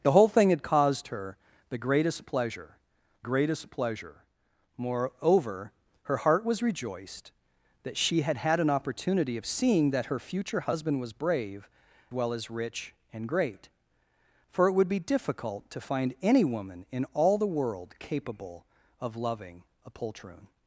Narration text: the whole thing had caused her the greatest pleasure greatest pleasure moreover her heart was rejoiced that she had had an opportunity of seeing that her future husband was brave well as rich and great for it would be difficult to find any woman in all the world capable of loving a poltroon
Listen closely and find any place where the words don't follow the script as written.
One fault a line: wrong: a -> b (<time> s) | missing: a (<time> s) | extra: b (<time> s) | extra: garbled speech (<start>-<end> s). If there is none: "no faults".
no faults